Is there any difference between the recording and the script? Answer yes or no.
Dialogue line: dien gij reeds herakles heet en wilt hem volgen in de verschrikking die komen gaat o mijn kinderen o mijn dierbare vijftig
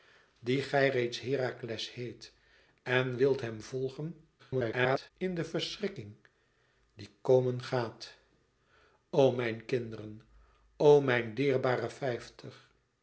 yes